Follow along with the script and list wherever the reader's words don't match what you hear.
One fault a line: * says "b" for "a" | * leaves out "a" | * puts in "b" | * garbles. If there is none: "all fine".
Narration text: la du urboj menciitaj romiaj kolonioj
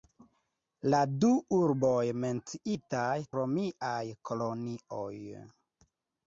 all fine